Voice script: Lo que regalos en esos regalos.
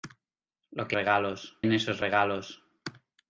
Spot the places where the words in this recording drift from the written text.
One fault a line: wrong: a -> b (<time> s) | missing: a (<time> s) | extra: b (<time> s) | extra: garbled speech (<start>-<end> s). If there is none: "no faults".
no faults